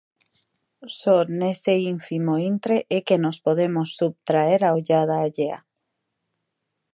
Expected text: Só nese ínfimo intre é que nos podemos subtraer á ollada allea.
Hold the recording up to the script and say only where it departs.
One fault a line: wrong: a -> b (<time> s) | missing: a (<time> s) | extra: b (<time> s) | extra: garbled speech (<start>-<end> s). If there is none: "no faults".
no faults